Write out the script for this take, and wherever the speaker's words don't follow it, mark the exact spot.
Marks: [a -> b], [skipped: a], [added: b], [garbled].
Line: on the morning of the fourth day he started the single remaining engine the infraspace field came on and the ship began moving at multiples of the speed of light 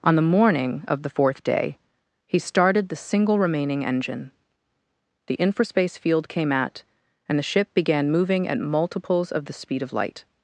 on the morning of the fourth day he started the single remaining engine the infraspace field came [on -> at] and the ship began moving at multiples of the speed of light